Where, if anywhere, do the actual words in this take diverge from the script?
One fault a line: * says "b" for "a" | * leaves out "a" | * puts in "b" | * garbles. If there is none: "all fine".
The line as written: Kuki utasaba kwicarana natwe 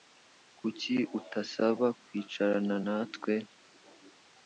all fine